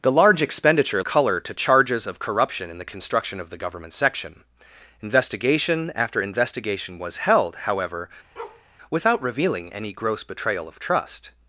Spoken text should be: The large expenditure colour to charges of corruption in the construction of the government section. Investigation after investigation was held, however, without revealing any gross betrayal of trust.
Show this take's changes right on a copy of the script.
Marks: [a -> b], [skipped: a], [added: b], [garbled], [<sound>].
The large expenditure colour to charges of corruption in the construction of the government section. Investigation after investigation was held, however, [bark] without revealing any gross betrayal of trust.